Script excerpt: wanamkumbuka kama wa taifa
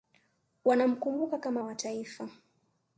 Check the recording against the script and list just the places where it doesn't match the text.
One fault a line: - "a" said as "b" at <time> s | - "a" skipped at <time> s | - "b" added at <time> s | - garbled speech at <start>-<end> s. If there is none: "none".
none